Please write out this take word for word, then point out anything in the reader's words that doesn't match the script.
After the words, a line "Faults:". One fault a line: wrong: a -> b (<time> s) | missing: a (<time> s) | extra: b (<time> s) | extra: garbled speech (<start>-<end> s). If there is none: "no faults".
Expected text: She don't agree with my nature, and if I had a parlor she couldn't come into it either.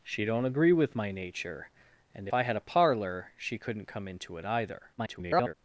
She don't agree with my nature, and I had a parlor she couldn't come into it either. [garbled]
Faults:
missing: if (2.3 s)
extra: garbled speech (5.0-5.5 s)